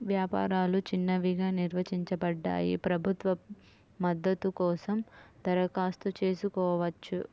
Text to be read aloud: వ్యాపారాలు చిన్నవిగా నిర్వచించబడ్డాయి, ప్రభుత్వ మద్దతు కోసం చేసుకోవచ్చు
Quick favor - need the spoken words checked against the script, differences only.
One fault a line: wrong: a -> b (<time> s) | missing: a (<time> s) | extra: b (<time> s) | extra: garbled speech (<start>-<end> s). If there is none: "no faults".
extra: దరఖాస్తు (5.5 s)